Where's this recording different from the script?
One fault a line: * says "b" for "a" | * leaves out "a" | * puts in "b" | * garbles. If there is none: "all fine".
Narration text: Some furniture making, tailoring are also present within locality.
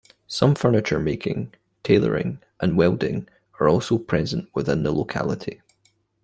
* puts in "and welding"
* puts in "the"